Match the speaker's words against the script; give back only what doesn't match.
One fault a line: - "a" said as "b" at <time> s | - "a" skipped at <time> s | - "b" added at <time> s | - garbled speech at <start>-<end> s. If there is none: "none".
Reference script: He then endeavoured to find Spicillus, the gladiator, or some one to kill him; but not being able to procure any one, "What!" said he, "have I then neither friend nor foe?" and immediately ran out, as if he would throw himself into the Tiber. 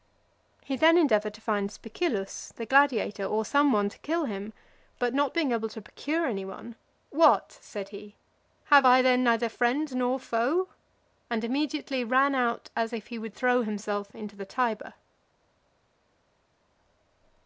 none